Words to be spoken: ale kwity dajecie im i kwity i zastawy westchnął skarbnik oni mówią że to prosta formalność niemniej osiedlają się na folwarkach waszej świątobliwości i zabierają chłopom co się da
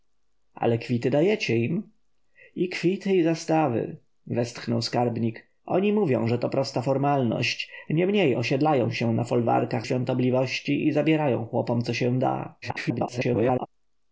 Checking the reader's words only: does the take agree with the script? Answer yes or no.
no